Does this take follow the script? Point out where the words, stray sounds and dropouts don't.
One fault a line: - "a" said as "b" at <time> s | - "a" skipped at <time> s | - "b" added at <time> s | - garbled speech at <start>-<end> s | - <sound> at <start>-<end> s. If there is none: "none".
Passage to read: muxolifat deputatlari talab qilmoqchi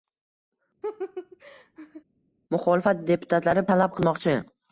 - laugh at 0.8-2.0 s